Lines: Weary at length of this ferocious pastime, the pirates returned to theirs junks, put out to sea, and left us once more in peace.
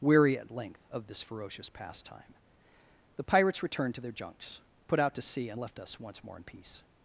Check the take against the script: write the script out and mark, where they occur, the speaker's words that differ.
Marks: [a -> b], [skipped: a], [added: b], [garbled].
Weary at length of this ferocious pastime, the pirates returned to [theirs -> their] junks, put out to sea, and left us once more in peace.